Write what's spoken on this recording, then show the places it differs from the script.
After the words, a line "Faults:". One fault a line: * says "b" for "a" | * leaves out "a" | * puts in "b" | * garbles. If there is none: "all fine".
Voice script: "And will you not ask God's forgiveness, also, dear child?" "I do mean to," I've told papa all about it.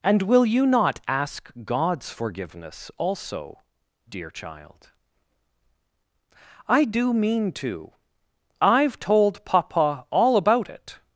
"And will you not ask God's forgiveness, also, dear child?" "I do mean to," I've told papa all about it.
Faults:
all fine